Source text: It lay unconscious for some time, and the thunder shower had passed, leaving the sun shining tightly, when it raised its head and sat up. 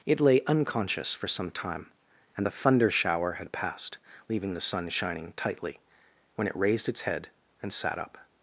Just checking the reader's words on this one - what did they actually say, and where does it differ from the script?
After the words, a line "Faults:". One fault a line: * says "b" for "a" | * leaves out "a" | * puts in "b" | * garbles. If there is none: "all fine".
It lay unconscious for some time, and the thunder shower had passed, leaving the sun shining tightly, when it raised its head and sat up.
Faults:
all fine